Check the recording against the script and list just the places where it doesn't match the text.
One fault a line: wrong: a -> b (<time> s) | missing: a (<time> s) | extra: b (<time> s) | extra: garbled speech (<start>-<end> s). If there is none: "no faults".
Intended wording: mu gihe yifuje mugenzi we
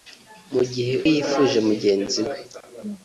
no faults